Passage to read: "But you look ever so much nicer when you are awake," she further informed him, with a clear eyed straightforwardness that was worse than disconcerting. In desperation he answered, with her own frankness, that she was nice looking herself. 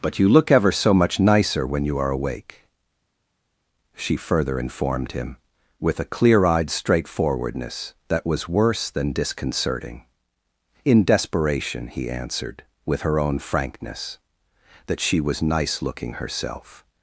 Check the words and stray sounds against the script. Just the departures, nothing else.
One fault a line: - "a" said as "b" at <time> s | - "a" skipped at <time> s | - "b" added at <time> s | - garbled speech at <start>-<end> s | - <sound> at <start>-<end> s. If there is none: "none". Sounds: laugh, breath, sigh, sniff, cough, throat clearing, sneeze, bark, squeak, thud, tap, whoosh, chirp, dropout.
none